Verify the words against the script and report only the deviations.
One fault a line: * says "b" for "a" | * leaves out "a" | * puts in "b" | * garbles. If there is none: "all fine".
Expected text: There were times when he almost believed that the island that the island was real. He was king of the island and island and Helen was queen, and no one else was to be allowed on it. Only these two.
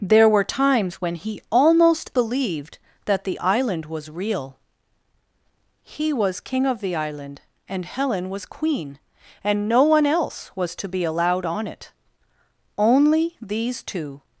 * leaves out "that the island"
* leaves out "island and"